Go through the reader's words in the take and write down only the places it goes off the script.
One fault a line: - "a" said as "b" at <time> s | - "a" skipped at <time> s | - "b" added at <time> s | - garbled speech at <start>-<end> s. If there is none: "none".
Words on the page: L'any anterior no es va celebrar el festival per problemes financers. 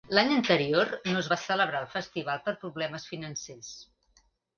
none